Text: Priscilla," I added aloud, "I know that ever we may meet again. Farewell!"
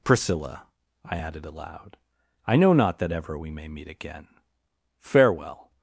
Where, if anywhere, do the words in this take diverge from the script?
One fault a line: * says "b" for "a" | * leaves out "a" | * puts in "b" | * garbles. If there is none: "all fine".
* puts in "not"